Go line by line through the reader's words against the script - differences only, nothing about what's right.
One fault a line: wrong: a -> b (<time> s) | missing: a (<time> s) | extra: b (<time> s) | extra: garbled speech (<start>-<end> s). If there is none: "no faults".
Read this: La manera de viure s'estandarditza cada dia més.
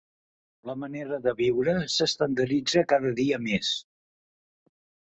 no faults